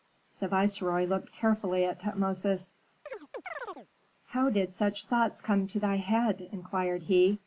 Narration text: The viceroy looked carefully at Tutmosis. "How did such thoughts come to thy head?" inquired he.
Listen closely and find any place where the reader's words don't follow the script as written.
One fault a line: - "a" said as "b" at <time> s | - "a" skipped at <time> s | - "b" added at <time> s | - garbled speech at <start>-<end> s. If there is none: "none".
none